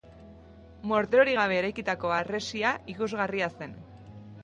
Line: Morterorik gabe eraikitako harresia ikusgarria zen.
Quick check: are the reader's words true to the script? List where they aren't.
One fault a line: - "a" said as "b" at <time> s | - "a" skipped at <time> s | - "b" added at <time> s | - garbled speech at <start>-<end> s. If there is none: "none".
none